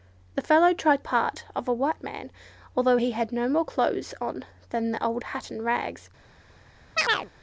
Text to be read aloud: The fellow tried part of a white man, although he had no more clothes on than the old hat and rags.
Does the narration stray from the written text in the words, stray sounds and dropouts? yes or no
yes